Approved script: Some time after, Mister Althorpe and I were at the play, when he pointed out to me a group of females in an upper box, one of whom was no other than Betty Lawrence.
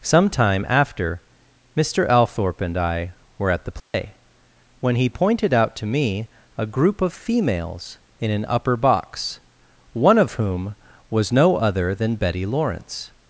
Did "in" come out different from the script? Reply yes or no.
no